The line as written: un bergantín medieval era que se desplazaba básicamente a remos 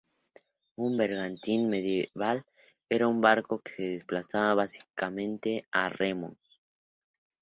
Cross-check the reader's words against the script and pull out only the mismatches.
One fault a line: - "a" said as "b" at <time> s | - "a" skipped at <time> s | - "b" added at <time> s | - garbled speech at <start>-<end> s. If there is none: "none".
- "un barco" added at 3.1 s